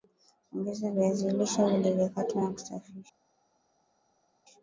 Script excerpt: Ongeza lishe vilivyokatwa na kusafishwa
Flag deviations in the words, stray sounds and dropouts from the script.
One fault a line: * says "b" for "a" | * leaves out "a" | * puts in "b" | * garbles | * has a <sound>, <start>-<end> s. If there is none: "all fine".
* puts in "viazi"